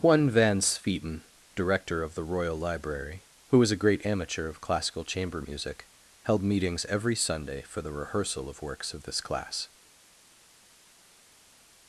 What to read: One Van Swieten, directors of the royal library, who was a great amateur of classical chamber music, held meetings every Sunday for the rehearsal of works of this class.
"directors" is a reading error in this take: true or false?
true